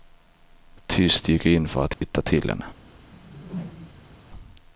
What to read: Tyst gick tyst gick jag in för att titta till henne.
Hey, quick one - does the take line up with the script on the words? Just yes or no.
no